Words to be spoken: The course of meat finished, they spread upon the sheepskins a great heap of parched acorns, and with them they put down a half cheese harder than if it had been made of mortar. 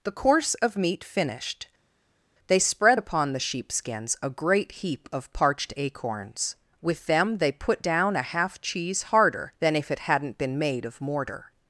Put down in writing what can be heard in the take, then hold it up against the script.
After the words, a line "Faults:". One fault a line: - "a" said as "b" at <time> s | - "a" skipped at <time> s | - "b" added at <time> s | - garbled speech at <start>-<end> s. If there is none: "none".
The course of meat finished, they spread upon the sheepskins a great heap of parched acorns, with them they put down a half cheese harder than if it hadn't been made of mortar.
Faults:
- "and" skipped at 6.6 s
- "had" said as "hadn't" at 10.0 s